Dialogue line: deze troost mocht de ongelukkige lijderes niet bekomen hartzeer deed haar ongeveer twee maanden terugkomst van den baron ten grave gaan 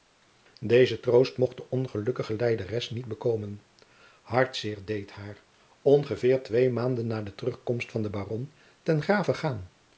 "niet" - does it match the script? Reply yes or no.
yes